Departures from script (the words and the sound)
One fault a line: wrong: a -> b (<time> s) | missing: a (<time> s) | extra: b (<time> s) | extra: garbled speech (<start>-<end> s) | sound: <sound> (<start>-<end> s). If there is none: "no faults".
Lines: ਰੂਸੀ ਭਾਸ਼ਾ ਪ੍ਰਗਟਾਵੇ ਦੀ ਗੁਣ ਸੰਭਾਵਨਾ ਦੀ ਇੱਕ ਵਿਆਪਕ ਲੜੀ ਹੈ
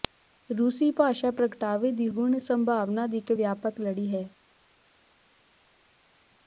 no faults